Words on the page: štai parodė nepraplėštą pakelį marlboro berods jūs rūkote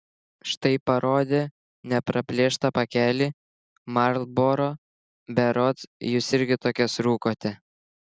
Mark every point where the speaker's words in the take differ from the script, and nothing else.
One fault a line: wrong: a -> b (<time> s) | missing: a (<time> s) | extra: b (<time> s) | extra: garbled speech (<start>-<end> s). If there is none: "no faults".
extra: irgi tokias (6.4 s)